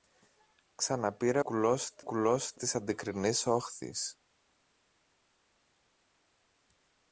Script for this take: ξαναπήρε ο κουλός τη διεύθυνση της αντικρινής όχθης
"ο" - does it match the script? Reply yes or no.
no